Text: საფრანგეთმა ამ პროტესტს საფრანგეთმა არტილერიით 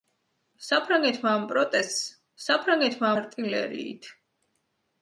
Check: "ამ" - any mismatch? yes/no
no